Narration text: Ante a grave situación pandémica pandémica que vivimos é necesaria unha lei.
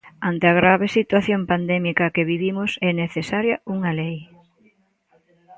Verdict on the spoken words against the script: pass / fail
fail